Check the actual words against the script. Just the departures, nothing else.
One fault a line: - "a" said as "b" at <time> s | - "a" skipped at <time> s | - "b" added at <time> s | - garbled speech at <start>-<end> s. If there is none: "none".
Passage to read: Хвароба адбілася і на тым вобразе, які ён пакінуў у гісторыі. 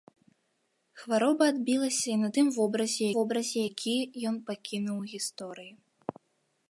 - "вобразе" added at 3.2 s